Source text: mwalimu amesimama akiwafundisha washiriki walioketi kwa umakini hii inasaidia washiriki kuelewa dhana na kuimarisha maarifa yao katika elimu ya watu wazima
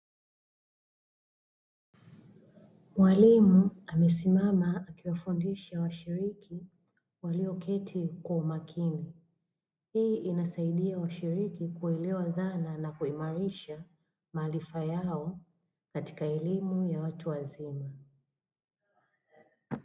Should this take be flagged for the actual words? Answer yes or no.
no